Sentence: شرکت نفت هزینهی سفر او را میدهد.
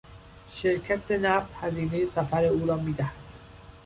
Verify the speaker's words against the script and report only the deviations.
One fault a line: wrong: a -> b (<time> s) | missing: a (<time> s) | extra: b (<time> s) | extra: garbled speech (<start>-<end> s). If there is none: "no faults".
no faults